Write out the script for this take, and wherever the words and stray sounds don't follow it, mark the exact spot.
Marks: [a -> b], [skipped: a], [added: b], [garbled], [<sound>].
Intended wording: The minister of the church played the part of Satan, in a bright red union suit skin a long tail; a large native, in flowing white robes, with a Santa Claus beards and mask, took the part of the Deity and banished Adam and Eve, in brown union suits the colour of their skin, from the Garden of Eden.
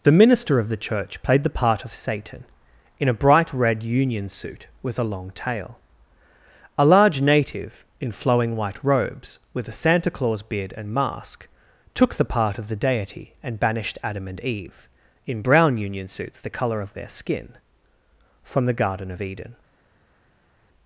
The minister of the church played the part of Satan, in a bright red union suit [skin -> with] a long tail; a large native, in flowing white robes, with a Santa Claus [beards -> beard] and mask, took the part of the Deity and banished Adam and Eve, in brown union suits the colour of their skin, from the Garden of Eden.